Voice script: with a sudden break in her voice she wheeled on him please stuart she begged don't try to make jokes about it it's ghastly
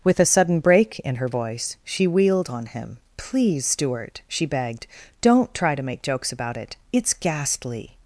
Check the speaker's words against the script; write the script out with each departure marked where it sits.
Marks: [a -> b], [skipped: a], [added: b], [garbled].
with a sudden break in her voice she wheeled on him please stuart she begged don't try to make jokes about it it's ghastly